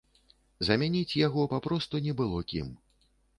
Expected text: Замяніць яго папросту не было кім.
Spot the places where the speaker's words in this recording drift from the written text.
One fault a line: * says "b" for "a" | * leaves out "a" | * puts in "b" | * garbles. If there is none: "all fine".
all fine